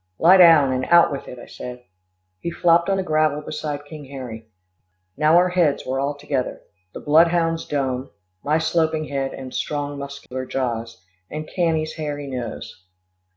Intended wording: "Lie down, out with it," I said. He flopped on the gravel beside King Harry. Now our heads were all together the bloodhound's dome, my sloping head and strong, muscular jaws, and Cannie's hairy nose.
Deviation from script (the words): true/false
true